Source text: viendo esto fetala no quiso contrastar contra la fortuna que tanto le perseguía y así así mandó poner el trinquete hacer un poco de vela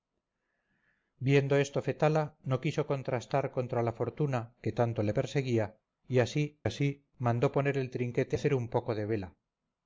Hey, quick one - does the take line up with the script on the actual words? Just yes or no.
yes